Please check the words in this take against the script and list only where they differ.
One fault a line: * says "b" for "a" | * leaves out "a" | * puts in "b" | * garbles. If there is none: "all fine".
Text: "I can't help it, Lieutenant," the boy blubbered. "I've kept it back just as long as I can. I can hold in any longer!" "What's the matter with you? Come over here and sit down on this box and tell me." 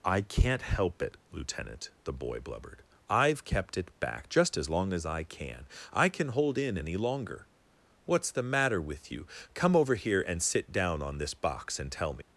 all fine